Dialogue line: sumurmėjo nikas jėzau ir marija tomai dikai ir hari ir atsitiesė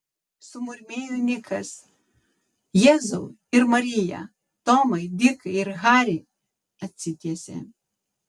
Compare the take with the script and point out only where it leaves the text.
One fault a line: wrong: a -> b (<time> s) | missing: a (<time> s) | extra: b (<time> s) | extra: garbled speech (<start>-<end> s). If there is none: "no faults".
missing: ir (6.2 s)